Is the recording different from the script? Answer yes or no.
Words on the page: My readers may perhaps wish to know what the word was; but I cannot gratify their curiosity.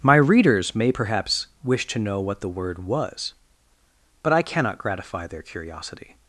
no